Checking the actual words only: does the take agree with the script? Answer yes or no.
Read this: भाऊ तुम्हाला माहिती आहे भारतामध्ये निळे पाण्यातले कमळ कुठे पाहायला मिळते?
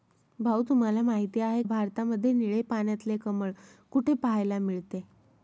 yes